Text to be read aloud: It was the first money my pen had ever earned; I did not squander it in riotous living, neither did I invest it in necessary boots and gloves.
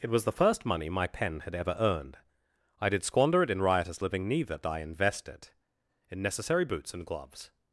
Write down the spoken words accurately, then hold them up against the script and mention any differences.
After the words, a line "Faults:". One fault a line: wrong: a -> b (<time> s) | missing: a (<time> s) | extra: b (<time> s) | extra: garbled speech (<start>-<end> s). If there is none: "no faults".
It was the first money my pen had ever earned; I did squander it in riotous living, neither did I invest it in necessary boots and gloves.
Faults:
missing: not (3.0 s)